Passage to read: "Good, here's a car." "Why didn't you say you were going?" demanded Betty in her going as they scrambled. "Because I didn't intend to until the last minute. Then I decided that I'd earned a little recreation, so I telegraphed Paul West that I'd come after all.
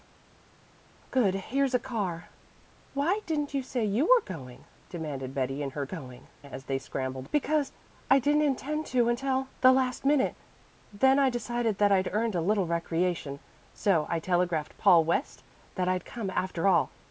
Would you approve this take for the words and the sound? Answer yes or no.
yes